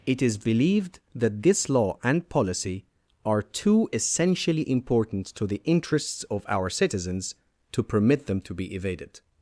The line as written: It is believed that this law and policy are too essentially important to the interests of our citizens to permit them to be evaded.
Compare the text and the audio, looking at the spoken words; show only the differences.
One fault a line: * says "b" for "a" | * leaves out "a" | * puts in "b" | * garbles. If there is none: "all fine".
all fine